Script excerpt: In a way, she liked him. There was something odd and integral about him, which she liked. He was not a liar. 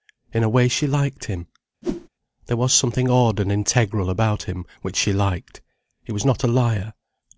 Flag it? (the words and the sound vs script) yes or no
yes